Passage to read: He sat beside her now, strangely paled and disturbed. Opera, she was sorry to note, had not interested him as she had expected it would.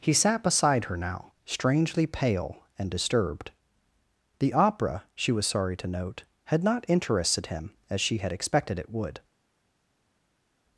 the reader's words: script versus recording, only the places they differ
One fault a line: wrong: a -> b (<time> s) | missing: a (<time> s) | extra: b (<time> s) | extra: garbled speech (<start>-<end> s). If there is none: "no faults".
wrong: paled -> pale (2.0 s)
extra: The (4.4 s)